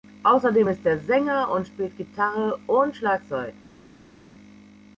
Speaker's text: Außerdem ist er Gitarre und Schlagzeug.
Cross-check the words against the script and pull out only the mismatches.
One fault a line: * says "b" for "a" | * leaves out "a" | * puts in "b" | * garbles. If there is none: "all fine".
* puts in "Sänger und spielt"